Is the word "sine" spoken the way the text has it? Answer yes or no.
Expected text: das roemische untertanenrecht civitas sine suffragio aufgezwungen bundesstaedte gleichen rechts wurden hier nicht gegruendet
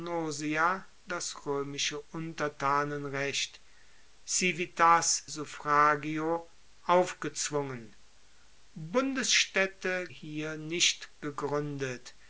no